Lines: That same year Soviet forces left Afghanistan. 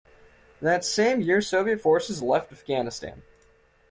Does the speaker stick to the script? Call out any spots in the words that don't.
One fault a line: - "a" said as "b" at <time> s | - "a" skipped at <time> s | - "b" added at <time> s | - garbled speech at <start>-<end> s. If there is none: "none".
none